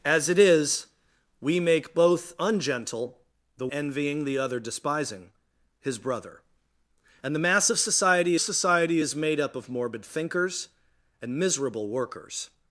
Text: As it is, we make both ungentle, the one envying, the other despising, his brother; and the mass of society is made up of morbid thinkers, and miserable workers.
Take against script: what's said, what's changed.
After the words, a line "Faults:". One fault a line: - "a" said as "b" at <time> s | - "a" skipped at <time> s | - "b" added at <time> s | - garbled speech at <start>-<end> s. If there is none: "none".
As it is, we make both ungentle, the envying, the other despising, his brother; and the mass of society society is made up of morbid thinkers, and miserable workers.
Faults:
- "one" skipped at 3.7 s
- "society" added at 8.4 s